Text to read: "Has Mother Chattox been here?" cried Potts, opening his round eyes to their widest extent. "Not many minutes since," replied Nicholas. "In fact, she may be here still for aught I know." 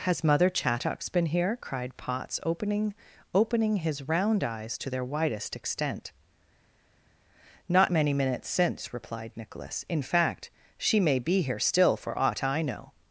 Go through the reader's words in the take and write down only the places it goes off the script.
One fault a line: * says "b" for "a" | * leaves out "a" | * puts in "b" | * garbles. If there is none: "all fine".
* puts in "opening"